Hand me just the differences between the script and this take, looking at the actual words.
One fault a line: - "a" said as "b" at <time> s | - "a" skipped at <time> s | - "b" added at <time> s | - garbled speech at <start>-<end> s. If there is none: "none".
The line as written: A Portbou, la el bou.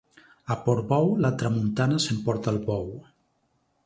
- "tramuntana s'emporta" added at 1.4 s